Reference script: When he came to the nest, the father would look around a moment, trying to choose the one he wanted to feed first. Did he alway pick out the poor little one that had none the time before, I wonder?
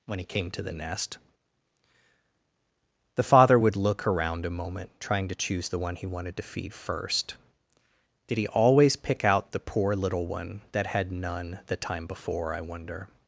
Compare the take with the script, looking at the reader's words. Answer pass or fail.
fail